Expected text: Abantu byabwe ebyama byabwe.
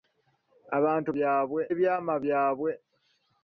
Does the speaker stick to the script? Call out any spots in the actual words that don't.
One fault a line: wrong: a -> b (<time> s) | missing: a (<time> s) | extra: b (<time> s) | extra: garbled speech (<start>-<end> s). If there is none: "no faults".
no faults